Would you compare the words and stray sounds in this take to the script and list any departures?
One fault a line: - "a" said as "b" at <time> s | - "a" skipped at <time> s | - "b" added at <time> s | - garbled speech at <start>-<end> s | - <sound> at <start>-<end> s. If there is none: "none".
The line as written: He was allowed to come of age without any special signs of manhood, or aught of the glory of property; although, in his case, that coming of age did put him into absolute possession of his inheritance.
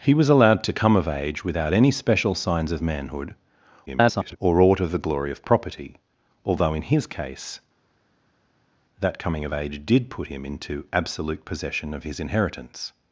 - garbled speech at 3.9-4.4 s